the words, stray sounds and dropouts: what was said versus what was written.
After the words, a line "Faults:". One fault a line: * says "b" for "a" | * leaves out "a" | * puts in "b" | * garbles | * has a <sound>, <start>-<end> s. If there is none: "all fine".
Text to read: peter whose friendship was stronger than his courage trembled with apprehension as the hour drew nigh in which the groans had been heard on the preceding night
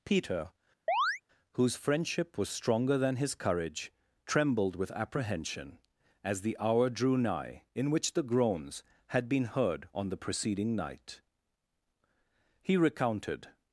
peter whose friendship was stronger than his courage trembled with apprehension as the hour drew nigh in which the groans had been heard on the preceding night he recounted
Faults:
* has a chirp, 0.9-1.2 s
* puts in "he recounted"